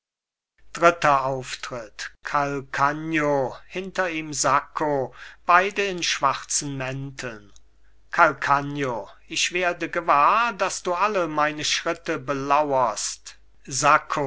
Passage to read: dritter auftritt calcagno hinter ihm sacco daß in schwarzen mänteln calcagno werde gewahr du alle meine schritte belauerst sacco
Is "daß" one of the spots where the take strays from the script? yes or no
yes